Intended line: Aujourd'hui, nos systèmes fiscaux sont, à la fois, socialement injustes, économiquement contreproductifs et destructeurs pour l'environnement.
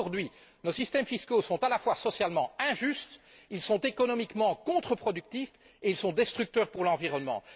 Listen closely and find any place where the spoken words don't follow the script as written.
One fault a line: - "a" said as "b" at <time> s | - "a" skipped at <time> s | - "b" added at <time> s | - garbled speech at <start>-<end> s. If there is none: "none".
none